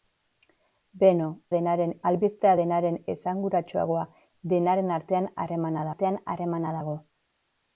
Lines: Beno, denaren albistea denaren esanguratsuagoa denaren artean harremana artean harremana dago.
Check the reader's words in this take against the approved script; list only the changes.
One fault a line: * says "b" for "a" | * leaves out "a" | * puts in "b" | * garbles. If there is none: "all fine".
all fine